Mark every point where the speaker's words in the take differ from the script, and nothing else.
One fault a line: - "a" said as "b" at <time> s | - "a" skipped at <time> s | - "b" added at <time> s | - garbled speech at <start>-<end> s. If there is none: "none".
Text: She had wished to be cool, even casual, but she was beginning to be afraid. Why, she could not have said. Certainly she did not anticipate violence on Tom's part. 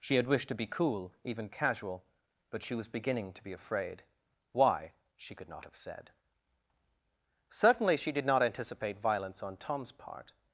none